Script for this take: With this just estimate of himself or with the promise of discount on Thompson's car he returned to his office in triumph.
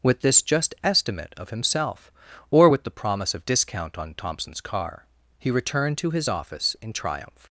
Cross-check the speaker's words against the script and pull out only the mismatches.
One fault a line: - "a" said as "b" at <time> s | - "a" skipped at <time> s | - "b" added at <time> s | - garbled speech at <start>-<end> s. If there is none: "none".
none